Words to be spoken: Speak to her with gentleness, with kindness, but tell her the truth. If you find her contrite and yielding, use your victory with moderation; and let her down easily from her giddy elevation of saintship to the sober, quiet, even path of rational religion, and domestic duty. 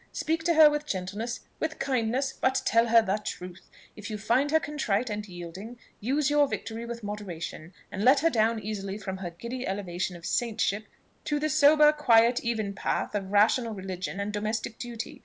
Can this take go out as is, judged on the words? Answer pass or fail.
pass